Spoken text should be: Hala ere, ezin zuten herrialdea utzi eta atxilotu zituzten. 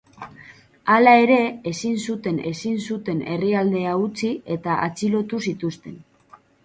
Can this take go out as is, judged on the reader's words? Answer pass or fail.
fail